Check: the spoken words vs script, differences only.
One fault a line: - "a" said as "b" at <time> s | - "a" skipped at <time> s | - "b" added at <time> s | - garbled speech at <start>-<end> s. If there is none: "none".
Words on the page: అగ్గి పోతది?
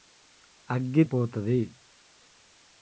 none